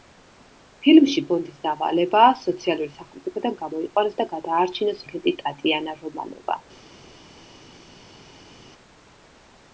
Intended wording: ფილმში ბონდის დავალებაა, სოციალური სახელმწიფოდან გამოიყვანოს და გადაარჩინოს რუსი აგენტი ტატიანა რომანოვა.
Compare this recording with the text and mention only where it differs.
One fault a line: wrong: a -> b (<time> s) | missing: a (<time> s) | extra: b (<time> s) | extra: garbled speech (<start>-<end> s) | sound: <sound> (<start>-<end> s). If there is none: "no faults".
missing: რუსი (5.1 s)